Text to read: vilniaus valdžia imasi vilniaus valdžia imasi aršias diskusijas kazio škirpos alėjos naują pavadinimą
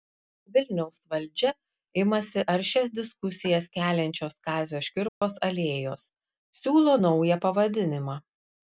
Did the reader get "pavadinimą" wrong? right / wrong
right